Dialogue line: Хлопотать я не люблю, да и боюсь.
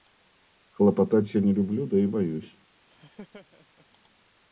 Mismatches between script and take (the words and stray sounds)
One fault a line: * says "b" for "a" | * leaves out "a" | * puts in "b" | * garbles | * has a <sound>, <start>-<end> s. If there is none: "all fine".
* has a laugh, 2.8-3.9 s